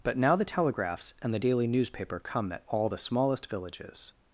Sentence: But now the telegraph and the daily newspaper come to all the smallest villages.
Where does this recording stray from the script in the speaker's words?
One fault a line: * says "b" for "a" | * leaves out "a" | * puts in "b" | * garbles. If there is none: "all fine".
* says "telegraphs" for "telegraph"
* says "at" for "to"